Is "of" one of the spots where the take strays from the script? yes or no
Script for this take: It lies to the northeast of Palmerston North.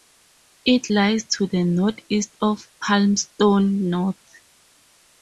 no